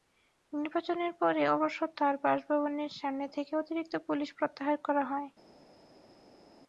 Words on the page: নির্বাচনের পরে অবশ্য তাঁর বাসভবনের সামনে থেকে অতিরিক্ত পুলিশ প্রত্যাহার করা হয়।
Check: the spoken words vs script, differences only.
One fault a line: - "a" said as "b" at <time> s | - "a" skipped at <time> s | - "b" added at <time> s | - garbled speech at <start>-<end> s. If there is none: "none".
none